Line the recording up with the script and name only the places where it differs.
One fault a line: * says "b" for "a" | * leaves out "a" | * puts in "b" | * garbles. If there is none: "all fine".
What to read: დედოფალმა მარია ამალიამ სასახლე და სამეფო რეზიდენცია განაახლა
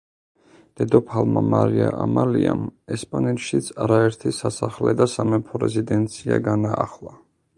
* puts in "ესპანეთშიც არაერთი"